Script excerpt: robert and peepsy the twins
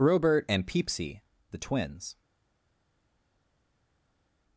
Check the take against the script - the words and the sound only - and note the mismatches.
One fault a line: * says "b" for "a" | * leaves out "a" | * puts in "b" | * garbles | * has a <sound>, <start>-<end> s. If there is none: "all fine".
all fine